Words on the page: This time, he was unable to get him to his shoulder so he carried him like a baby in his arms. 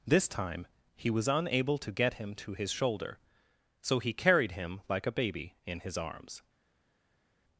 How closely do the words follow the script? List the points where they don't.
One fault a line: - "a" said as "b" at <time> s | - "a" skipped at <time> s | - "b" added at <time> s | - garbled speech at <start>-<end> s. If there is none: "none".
none